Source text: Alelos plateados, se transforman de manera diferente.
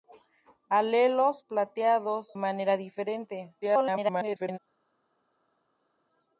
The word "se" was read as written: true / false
false